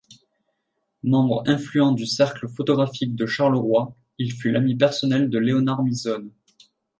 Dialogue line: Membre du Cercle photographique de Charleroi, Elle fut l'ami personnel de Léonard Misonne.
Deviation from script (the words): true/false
true